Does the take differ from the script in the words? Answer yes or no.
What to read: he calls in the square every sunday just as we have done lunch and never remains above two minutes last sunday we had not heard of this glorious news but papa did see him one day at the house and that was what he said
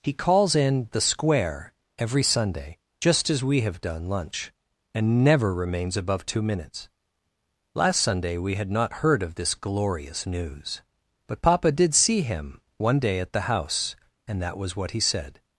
no